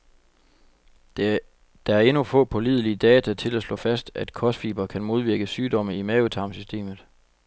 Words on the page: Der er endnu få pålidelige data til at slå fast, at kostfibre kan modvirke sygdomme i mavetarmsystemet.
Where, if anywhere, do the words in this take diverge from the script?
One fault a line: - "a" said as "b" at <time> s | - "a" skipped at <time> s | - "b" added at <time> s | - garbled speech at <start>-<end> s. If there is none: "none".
none